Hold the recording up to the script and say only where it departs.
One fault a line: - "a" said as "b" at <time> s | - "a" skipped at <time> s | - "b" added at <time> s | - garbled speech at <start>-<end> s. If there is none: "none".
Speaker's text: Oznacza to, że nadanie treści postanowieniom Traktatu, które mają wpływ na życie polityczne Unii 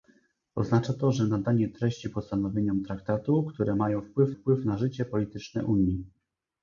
- "wpływ" added at 4.3 s